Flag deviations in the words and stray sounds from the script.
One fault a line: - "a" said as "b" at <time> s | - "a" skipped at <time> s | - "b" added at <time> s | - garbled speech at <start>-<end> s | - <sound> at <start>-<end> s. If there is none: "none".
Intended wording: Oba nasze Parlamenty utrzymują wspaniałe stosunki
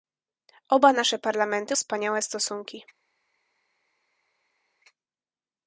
- "utrzymują" skipped at 1.8 s